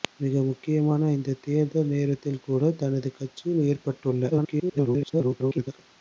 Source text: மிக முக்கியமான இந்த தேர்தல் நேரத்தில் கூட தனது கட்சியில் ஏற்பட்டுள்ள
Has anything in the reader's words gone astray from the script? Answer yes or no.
yes